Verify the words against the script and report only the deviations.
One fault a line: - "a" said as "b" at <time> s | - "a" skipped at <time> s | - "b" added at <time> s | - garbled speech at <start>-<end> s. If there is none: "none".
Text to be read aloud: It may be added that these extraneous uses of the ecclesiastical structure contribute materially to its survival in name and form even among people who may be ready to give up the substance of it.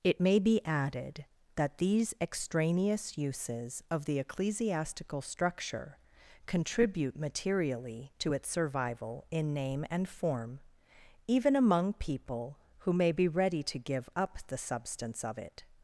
none